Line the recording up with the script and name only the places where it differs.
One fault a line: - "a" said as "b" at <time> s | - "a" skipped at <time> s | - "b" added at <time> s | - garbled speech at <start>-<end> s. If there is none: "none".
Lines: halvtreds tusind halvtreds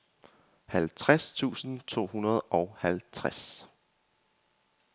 - "to hundrede og" added at 1.9 s